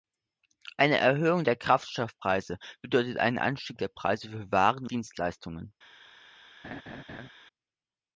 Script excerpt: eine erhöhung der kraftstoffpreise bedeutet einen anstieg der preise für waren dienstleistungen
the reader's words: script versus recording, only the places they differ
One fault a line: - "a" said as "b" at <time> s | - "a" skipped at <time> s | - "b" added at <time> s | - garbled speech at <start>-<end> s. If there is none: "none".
none